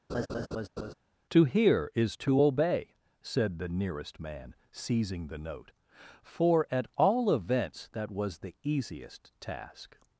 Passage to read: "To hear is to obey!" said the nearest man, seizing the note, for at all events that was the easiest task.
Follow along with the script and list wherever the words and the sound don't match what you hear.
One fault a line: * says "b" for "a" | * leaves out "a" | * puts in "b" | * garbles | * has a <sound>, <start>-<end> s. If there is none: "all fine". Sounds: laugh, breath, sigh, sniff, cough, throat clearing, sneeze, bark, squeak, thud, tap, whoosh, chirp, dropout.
* has a laugh, 0.1-0.9 s